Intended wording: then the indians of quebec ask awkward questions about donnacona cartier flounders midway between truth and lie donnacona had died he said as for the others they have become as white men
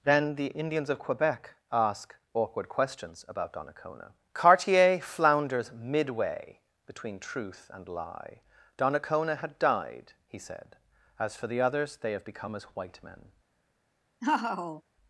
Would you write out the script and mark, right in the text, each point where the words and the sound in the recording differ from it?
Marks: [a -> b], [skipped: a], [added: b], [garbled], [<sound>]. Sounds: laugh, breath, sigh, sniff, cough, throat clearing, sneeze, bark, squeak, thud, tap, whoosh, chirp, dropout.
then the indians of quebec ask awkward questions about donnacona cartier flounders midway between truth and lie donnacona had died he said as for the others they have become as white men [laugh]